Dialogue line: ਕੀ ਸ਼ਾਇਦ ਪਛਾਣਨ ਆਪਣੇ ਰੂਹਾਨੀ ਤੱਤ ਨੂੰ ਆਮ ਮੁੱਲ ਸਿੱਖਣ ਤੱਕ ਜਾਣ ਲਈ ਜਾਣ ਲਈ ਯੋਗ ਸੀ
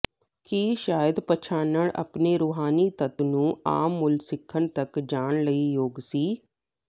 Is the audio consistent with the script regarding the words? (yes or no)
no